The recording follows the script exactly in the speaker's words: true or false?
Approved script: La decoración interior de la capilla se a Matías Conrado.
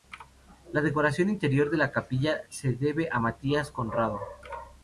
false